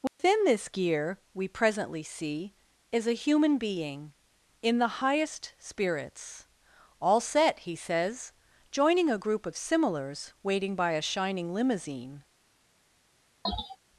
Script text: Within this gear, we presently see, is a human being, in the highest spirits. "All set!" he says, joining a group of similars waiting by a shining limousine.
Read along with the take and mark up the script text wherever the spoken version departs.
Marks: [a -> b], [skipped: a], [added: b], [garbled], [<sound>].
Within [dropout] this gear, we presently see, is a human being, in the highest spirits. "All set!" he says, joining a group of similars waiting by a shining limousine. [sneeze]